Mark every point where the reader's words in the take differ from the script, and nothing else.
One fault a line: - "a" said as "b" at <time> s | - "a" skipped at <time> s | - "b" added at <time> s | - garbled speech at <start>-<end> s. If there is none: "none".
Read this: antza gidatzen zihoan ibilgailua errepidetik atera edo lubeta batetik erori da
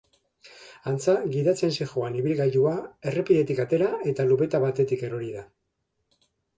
- "edo" said as "eta" at 4.2 s